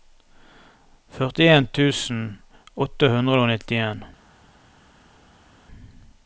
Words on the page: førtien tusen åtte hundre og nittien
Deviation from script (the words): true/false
false